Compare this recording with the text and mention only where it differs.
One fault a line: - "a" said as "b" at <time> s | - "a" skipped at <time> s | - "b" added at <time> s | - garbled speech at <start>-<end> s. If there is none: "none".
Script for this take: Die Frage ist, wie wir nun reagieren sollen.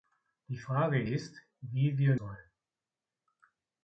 - "nun reagieren" skipped at 2.2 s